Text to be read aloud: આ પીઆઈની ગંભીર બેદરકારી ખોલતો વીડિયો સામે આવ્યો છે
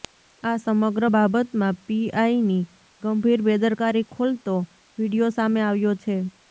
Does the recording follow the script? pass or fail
fail